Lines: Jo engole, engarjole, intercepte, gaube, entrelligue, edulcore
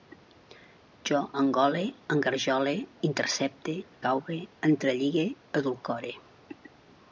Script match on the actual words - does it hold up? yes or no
yes